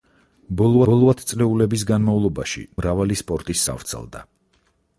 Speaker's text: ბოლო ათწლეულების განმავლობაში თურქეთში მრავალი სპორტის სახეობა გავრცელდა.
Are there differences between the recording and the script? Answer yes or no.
yes